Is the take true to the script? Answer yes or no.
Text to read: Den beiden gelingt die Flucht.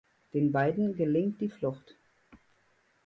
yes